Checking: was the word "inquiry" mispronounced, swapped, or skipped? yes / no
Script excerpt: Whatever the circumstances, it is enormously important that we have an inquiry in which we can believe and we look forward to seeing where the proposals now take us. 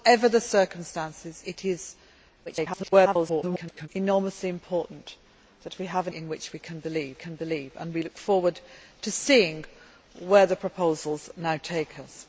yes